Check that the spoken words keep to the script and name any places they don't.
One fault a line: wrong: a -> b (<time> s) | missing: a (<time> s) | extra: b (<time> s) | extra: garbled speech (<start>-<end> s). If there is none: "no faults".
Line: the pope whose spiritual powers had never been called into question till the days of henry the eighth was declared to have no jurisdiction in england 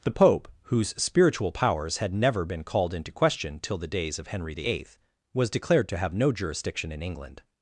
no faults